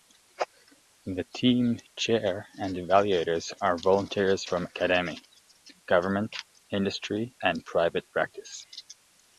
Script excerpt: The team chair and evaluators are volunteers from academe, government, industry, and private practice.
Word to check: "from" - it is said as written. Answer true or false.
true